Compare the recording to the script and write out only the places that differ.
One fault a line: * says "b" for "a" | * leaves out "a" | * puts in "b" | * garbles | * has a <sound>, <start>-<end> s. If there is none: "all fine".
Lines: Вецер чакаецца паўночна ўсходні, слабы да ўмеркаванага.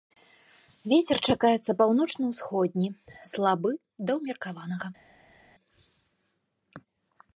all fine